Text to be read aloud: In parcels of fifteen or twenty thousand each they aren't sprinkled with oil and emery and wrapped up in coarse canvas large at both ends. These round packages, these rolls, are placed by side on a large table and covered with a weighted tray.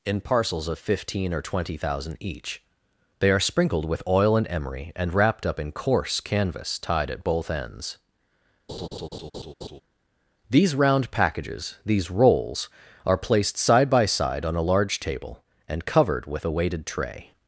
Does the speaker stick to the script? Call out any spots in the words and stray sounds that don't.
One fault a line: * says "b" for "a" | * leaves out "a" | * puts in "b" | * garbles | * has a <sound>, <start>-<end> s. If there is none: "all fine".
* says "are" for "aren't"
* says "tied" for "large"
* has a laugh, 8.7-9.8 s
* puts in "side"